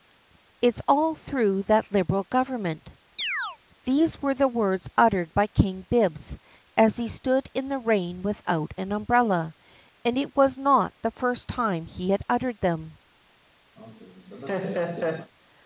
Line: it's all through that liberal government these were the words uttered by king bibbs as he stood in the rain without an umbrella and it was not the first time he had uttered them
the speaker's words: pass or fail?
pass